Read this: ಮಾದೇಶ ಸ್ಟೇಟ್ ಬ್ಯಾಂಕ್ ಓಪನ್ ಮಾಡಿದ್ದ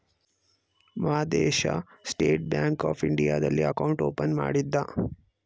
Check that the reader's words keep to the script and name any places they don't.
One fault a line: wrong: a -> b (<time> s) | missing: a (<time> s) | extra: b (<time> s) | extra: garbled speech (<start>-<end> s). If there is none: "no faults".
extra: ಆಫ್ ಇಂಡಿಯಾದಲ್ಲಿ ಅಕೌಂಟ್ (2.9 s)